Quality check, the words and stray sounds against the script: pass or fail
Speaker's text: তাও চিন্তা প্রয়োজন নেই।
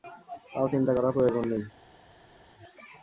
fail